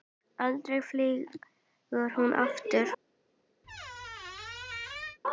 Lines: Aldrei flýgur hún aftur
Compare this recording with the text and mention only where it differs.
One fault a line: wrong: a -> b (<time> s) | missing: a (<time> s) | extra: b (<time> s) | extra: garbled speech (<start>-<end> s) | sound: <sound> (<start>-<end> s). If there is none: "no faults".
sound: squeak (3.6-5.2 s)